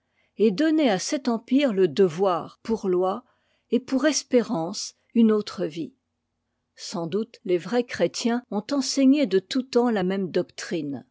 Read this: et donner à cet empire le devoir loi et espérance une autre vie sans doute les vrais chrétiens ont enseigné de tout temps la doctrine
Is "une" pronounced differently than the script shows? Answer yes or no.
no